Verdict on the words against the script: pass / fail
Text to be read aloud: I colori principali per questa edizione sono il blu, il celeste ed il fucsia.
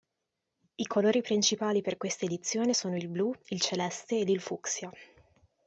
pass